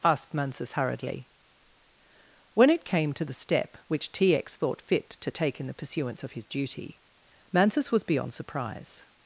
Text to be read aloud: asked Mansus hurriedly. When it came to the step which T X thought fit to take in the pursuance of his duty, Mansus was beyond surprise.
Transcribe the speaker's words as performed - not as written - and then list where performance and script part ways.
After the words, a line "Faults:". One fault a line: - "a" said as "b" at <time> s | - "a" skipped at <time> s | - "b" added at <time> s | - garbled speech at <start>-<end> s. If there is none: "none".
asked Mansus hurriedly. When it came to the step which T X thought fit to take in the pursuance of his duty, Mansus was beyond surprise.
Faults:
none